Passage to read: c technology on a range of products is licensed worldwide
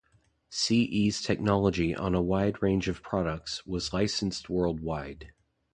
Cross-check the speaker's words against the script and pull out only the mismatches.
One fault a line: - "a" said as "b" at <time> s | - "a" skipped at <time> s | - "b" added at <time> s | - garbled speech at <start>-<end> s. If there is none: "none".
- "e's" added at 0.8 s
- "wide" added at 2.2 s
- "is" said as "was" at 3.7 s